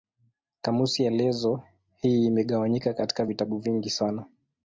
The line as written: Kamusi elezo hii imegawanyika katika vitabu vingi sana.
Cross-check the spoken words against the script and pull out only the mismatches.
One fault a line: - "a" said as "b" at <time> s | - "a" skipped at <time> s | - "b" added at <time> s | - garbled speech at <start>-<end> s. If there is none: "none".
none